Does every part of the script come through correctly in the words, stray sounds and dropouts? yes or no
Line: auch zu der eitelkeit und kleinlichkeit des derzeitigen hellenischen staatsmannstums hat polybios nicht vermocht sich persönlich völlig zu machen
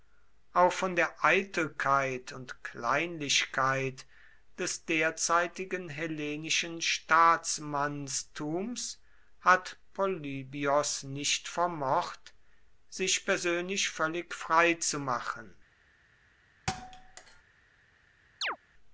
no